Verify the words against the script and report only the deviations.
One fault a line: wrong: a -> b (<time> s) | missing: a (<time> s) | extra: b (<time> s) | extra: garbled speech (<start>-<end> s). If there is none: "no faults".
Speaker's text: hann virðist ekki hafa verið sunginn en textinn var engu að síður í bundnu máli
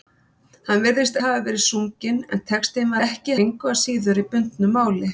missing: ekki (1.2 s)
wrong: var -> ekki (3.1 s)